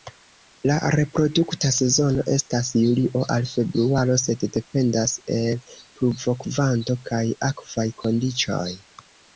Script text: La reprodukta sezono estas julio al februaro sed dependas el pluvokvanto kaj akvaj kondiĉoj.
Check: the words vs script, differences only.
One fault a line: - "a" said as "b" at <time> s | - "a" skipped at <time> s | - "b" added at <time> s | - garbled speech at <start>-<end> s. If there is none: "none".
none